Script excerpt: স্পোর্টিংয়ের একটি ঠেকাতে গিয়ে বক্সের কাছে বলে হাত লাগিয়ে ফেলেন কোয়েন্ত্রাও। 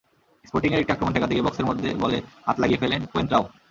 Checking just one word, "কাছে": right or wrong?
wrong